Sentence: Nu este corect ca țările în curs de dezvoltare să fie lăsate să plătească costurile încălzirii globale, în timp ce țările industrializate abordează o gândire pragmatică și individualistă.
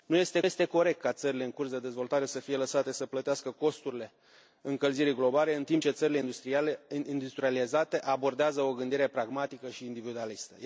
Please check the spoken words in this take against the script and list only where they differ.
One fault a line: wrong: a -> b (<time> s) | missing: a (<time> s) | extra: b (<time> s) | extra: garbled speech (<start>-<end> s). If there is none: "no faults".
extra: este (0.4 s)